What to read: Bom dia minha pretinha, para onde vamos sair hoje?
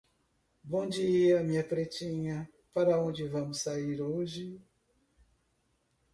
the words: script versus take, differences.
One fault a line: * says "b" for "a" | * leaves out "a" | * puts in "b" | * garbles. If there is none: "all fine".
all fine